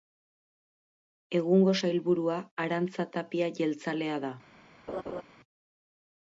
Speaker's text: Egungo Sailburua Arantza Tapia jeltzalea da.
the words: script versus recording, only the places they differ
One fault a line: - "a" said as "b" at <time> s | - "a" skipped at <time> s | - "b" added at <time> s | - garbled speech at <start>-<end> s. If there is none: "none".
none